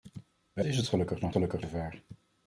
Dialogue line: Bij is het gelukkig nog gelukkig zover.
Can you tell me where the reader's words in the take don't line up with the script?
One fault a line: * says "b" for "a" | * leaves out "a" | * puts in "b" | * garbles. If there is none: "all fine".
all fine